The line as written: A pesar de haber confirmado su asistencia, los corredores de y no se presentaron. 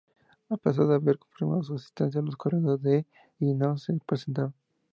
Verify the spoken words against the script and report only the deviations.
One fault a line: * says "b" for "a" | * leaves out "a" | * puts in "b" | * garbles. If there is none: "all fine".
all fine